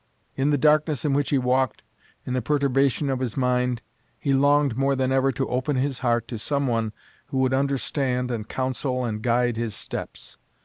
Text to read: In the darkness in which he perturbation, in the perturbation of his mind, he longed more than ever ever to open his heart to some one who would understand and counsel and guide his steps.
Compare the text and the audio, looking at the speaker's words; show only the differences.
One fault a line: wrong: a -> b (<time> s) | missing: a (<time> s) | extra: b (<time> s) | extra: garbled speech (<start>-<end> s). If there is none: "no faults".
wrong: perturbation -> walked (1.4 s)
missing: ever (5.3 s)